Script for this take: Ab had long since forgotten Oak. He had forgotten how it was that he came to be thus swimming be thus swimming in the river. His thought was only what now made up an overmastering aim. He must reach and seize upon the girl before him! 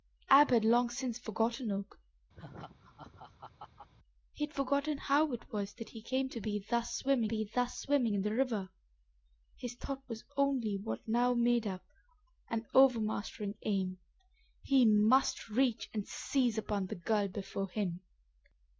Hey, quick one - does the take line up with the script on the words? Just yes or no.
yes